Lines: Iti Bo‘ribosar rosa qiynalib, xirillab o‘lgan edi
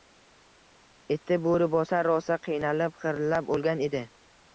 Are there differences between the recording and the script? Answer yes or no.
no